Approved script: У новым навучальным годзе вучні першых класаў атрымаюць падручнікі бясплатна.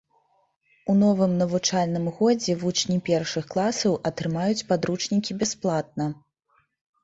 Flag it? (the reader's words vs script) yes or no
no